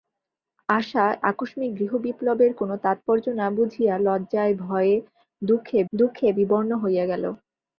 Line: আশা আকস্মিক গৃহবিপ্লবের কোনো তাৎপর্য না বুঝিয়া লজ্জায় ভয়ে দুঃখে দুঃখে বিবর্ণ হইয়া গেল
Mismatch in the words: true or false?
false